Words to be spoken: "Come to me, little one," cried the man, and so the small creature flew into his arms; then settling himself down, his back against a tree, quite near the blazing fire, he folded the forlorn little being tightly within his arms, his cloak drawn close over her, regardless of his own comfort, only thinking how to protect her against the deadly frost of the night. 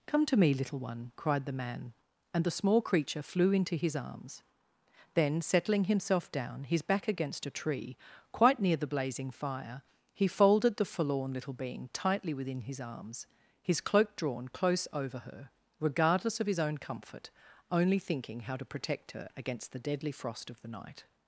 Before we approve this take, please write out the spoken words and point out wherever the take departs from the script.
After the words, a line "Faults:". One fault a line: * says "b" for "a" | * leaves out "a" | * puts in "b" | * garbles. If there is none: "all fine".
"Come to me, little one," cried the man, and the small creature flew into his arms; then settling himself down, his back against a tree, quite near the blazing fire, he folded the forlorn little being tightly within his arms, his cloak drawn close over her, regardless of his own comfort, only thinking how to protect her against the deadly frost of the night.
Faults:
* leaves out "so"